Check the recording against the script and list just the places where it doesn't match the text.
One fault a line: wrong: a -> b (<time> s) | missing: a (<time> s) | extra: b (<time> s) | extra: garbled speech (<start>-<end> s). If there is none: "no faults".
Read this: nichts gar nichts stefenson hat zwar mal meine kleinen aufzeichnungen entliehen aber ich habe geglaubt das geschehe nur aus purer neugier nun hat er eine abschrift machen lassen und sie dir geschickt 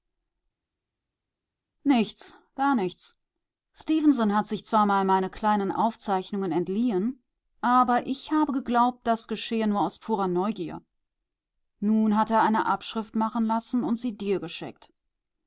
extra: sich (4.4 s)